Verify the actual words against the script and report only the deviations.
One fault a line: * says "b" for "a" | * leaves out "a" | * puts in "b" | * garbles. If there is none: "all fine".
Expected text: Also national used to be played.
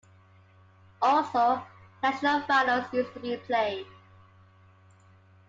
* puts in "finals"